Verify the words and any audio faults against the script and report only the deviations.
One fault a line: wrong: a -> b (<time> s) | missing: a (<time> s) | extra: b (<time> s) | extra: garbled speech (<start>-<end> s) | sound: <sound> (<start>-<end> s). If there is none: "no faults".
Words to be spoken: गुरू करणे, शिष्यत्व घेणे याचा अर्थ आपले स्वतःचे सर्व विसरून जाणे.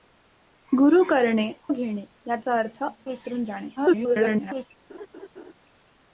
missing: शिष्यत्व (1.5 s)
missing: आपले स्वतःचे सर्व (2.8 s)
extra: garbled speech (3.8-4.7 s)
sound: laugh (4.9-5.5 s)